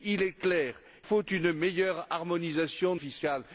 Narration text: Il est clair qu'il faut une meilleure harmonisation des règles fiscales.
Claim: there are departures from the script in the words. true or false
true